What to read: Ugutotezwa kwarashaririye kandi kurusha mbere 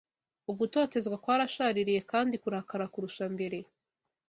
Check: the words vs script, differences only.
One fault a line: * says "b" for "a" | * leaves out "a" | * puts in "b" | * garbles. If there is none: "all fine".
* puts in "kurakara"